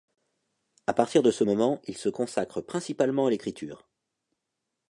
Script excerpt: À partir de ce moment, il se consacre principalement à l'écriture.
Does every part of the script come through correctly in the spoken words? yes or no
yes